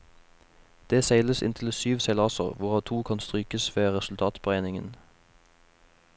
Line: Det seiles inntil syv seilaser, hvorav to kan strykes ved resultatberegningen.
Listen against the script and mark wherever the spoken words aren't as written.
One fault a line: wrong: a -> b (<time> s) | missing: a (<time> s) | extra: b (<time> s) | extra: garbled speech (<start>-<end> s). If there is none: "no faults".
no faults